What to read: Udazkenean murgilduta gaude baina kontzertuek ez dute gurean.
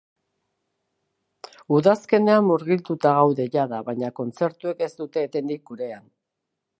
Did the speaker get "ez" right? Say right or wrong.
right